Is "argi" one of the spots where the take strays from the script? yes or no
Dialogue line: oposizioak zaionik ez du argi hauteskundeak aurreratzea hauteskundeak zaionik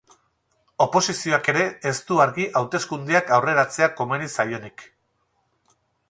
no